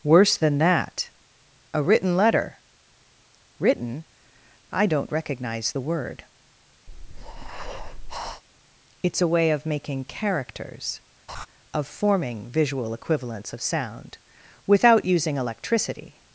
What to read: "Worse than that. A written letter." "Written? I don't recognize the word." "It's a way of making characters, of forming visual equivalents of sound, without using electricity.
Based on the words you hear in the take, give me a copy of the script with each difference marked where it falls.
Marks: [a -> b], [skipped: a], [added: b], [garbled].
"Worse than that. A written letter." "Written? I don't recognize the word." "It's a way of making characters, of forming visual equivalents of sound, without using electricity.